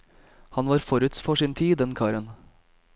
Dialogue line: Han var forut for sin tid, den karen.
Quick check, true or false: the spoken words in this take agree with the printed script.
true